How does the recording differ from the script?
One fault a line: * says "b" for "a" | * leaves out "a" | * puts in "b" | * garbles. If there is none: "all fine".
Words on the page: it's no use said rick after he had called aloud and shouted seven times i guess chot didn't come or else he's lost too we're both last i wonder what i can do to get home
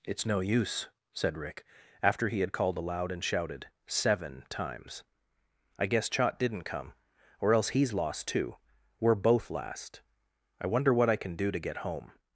all fine